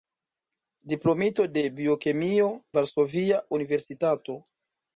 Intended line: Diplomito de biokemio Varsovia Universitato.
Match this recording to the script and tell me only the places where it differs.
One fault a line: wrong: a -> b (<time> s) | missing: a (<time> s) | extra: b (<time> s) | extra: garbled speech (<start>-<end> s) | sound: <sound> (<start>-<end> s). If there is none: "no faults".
no faults